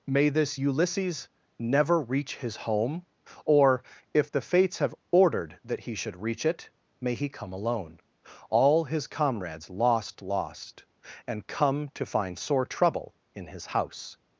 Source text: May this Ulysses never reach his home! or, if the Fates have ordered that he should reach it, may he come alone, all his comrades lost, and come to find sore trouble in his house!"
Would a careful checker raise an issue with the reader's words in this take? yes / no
yes